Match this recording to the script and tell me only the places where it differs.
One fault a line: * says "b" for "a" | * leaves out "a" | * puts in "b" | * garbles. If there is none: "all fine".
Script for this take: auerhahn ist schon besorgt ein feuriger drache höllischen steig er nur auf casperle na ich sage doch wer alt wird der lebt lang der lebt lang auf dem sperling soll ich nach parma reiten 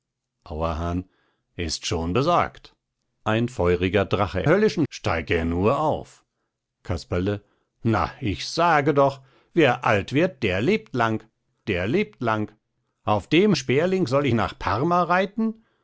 all fine